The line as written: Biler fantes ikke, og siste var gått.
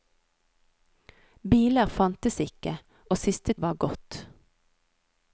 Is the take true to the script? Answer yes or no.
yes